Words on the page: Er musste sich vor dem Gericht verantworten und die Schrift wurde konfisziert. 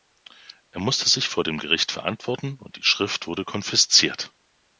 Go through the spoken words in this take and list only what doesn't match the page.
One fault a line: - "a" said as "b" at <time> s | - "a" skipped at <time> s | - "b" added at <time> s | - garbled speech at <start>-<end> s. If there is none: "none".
none